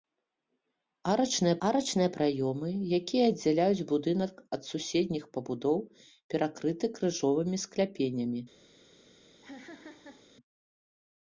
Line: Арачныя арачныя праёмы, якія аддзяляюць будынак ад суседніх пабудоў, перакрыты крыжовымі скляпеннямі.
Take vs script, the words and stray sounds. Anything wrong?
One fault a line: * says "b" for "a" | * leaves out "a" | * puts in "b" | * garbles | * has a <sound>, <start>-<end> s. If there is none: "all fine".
* has a laugh, 9.4-10.3 s